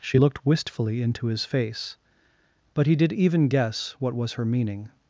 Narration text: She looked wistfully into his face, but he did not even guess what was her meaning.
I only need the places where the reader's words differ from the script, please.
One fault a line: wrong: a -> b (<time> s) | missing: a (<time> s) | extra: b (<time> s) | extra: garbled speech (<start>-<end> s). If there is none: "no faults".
missing: not (3.1 s)